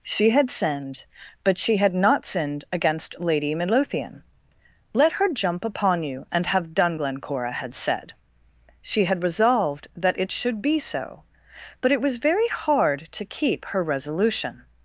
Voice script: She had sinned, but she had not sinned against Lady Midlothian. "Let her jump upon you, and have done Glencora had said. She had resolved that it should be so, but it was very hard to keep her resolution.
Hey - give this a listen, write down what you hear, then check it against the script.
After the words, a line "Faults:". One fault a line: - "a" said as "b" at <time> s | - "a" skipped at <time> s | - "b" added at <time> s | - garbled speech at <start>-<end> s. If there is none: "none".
She had sinned, but she had not sinned against Lady Midlothian. "Let her jump upon you, and have done Glencora had said. She had resolved that it should be so, but it was very hard to keep her resolution.
Faults:
none